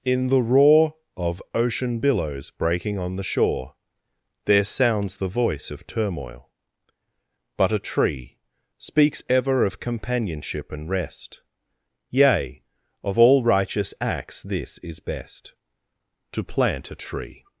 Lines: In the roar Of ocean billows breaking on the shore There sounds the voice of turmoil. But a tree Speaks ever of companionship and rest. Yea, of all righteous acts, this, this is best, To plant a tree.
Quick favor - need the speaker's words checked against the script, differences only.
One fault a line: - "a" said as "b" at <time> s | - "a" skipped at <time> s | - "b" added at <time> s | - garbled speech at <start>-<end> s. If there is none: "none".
- "this" skipped at 14.8 s